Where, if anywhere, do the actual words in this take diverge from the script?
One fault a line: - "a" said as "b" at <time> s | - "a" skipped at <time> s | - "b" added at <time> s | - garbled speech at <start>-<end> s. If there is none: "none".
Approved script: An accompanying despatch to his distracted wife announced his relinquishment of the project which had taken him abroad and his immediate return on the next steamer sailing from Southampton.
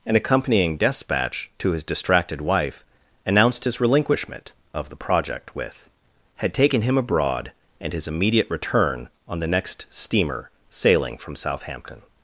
- "which" said as "with" at 5.6 s